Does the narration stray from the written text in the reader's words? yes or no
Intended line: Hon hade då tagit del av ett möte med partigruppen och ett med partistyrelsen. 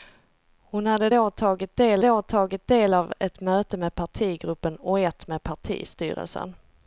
yes